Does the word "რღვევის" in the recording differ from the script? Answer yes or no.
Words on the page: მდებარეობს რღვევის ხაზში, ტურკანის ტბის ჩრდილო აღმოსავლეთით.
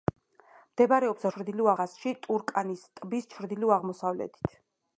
yes